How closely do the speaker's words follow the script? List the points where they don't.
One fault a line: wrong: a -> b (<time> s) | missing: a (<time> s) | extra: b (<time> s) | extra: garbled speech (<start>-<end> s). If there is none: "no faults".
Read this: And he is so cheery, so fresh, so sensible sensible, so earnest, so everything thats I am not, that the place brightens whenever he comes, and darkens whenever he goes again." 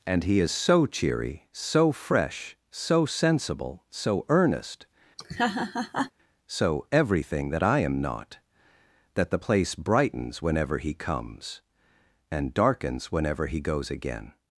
missing: sensible (3.8 s)
wrong: thats -> that (7.5 s)